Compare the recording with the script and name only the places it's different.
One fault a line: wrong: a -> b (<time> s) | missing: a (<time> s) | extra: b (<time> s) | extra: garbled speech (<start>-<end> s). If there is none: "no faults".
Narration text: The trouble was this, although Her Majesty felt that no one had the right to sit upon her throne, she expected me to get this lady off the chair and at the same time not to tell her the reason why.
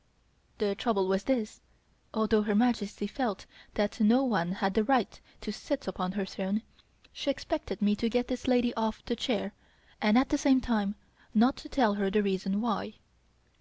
no faults